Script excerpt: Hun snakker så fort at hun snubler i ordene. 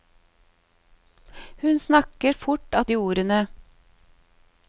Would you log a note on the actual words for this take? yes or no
yes